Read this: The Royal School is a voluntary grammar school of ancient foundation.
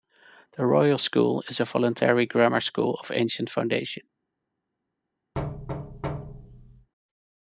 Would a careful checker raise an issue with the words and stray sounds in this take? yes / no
yes